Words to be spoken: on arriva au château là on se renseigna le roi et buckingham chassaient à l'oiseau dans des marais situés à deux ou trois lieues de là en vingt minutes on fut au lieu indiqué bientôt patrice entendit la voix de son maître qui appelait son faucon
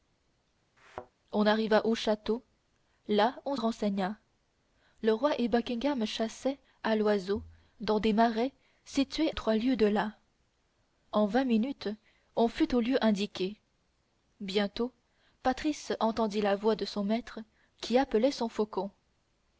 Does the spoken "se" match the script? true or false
false